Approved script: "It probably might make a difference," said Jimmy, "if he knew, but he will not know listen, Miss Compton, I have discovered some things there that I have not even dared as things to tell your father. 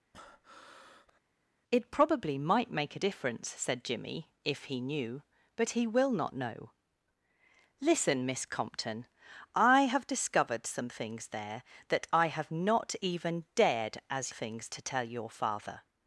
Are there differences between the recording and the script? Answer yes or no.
no